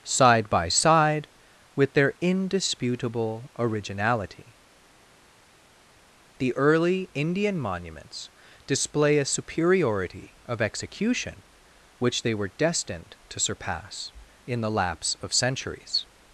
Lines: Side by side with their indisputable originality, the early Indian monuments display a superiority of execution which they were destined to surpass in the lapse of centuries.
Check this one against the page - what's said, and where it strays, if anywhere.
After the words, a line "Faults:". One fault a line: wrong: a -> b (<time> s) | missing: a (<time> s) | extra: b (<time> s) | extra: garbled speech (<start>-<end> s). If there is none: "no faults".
Side by side with their indisputable originality, the early Indian monuments display a superiority of execution which they were destined to surpass in the lapse of centuries.
Faults:
no faults